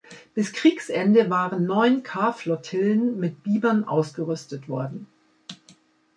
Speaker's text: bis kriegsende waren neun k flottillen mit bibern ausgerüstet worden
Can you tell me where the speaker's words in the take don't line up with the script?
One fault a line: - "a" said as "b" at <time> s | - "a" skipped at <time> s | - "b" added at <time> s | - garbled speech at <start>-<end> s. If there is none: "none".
none